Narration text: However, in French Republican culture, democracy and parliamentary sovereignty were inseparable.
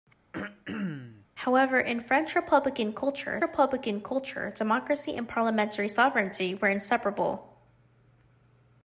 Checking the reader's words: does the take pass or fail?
fail